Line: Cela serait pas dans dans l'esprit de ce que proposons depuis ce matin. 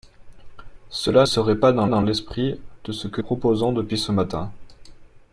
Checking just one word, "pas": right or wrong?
right